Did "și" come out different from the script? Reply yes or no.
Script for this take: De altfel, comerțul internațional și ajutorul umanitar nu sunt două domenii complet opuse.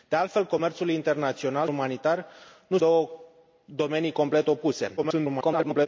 yes